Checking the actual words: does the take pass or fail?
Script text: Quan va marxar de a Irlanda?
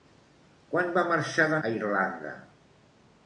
pass